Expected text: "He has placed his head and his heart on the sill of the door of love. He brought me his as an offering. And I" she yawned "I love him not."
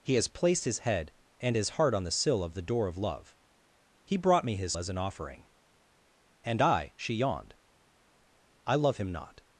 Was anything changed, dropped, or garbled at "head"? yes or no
no